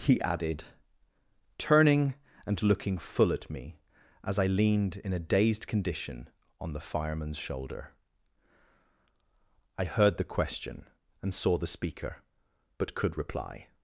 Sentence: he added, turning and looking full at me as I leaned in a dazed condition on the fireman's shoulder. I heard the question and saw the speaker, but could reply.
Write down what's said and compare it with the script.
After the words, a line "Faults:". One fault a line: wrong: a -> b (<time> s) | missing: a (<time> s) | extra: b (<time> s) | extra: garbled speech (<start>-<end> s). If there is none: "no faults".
he added, turning and looking full at me as I leaned in a dazed condition on the fireman's shoulder. I heard the question and saw the speaker, but could reply.
Faults:
no faults